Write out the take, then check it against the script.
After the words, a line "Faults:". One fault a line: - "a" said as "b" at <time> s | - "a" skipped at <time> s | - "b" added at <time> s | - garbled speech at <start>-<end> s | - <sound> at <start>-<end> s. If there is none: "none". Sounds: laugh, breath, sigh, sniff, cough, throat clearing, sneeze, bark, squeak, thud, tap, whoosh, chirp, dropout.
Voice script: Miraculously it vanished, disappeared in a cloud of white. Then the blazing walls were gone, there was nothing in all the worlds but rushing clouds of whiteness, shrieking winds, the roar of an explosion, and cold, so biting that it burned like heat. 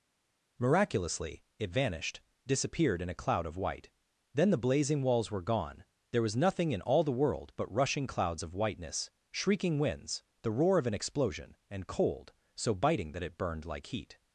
Miraculously it vanished, disappeared in a cloud of white. Then the blazing walls were gone, there was nothing in all the world but rushing clouds of whiteness, shrieking winds, the roar of an explosion, and cold, so biting that it burned like heat.
Faults:
- "worlds" said as "world" at 7.1 s